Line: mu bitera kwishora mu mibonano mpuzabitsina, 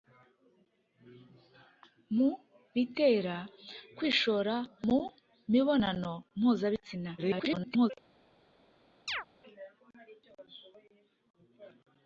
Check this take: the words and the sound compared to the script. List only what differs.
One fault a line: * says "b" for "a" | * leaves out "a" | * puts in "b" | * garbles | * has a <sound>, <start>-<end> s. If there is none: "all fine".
* garbles
* has a chirp, 9.1-9.3 s